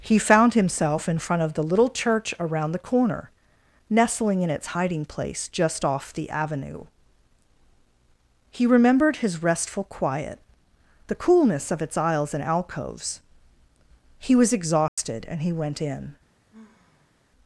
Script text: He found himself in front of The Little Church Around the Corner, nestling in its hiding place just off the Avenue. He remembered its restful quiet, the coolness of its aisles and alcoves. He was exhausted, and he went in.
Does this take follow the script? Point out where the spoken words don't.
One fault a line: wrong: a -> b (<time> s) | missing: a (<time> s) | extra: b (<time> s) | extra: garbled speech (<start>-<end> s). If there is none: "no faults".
wrong: its -> his (9.2 s)